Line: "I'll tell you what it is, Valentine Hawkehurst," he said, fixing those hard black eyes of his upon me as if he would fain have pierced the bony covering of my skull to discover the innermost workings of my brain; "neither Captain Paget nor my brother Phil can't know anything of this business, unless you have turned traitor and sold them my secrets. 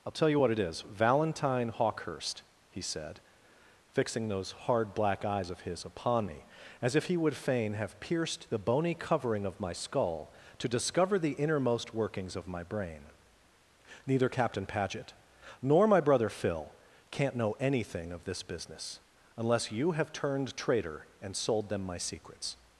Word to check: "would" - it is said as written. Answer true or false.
true